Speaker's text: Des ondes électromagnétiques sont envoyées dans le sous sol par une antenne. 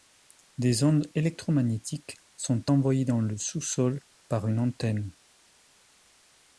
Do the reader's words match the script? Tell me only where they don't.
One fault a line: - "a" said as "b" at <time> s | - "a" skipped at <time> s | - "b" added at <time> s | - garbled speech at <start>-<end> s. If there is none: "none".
none